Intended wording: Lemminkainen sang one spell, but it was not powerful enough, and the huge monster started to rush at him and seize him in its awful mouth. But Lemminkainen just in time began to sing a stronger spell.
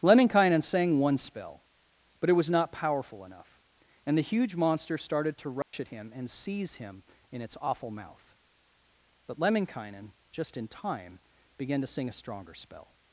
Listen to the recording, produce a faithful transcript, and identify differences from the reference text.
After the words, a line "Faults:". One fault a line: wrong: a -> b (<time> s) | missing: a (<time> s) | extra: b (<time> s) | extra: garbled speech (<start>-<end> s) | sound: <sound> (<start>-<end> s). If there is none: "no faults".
Lemminkainen sang one spell, but it was not powerful enough, and the huge monster started to rush at him and seize him in its awful mouth. But Lemminkainen just in time began to sing a stronger spell.
Faults:
sound: dropout (5.6-5.7 s)